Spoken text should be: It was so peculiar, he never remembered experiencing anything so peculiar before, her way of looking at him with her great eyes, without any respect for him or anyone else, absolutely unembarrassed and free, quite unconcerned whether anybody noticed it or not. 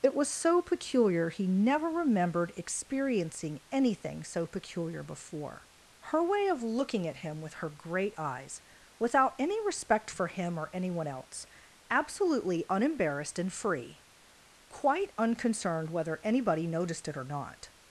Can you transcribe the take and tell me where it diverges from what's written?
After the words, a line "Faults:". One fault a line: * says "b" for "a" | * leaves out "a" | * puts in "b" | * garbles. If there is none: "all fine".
It was so peculiar, he never remembered experiencing anything so peculiar before, her way of looking at him with her great eyes, without any respect for him or anyone else, absolutely unembarrassed and free, quite unconcerned whether anybody noticed it or not.
Faults:
all fine